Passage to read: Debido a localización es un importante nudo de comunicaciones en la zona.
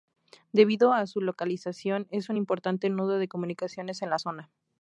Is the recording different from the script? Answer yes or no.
yes